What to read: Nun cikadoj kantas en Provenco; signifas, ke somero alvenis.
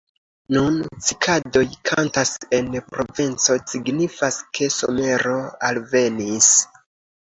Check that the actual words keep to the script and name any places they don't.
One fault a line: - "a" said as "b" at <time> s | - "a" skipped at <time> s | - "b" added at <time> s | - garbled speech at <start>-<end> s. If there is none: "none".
none